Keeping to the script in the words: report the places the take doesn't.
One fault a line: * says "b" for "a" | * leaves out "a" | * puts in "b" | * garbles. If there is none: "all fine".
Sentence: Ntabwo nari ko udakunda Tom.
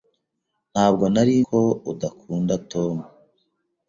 all fine